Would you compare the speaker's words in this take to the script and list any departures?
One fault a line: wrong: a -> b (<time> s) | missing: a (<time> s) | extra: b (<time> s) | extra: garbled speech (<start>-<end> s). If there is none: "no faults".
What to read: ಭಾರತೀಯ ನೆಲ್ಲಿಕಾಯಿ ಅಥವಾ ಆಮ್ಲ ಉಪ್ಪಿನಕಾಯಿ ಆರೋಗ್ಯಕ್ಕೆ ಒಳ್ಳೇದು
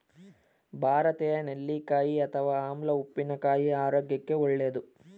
no faults